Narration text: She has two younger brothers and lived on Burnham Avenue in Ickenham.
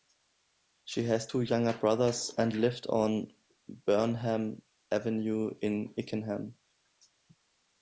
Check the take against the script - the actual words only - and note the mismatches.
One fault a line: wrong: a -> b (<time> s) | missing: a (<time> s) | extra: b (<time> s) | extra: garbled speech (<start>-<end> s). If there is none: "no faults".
no faults